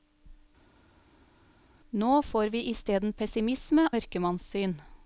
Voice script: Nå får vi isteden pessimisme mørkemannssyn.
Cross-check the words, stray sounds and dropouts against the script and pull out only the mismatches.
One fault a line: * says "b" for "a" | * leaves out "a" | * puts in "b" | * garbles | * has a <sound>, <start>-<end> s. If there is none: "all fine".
all fine